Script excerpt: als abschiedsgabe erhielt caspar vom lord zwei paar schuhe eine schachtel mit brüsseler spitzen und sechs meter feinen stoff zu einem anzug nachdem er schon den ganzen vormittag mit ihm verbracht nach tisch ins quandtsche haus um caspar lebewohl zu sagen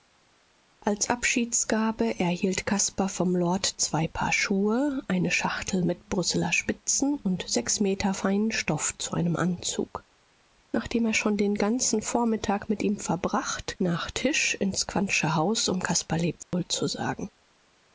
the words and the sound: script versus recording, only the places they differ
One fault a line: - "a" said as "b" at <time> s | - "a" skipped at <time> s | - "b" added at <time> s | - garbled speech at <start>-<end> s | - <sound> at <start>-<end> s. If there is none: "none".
- dropout at 16.4-16.5 s